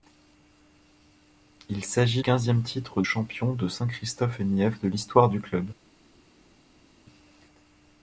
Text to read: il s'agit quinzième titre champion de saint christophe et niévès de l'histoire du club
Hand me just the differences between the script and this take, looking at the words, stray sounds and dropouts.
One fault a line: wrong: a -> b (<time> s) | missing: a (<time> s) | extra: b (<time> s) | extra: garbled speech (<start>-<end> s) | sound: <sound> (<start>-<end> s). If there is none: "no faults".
no faults